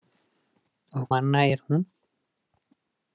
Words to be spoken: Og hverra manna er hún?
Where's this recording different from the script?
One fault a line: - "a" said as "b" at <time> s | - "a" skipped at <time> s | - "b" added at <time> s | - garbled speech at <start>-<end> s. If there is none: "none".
- "hverra" skipped at 1.0 s